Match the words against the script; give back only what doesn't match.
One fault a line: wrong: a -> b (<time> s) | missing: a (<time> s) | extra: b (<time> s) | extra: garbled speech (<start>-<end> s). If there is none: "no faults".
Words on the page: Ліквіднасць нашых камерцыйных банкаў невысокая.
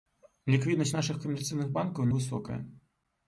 no faults